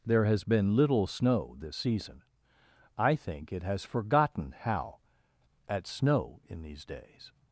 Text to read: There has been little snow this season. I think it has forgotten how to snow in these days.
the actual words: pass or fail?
fail